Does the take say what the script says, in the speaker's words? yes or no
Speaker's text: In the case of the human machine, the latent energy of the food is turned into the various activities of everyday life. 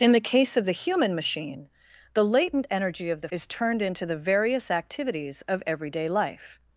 no